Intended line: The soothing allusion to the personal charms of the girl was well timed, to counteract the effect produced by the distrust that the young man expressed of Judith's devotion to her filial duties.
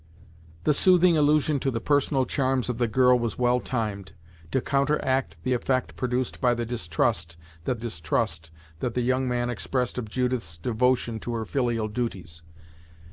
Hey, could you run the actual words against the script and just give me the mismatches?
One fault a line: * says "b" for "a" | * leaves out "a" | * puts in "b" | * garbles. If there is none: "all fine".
* puts in "distrust that"